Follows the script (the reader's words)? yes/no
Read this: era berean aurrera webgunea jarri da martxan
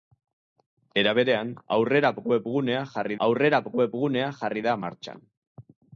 no